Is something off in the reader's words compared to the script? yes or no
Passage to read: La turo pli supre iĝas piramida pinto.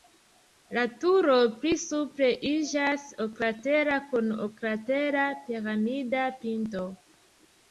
yes